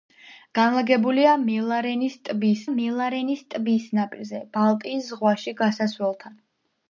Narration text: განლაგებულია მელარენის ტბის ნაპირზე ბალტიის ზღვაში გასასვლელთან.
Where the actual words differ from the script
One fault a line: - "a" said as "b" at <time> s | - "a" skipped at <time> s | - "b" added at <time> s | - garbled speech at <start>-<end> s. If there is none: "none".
- "მელარენის ტბის" added at 2.7 s